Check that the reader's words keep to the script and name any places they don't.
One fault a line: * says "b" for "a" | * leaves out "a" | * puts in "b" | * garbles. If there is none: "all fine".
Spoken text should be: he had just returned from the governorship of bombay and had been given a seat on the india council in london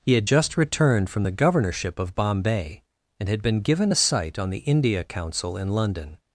* says "sight" for "seat"